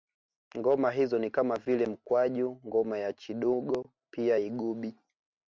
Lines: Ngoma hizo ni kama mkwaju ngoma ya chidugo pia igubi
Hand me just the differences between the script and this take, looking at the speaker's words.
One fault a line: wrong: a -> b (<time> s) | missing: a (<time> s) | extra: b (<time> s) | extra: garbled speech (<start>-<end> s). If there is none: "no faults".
extra: vile (1.6 s)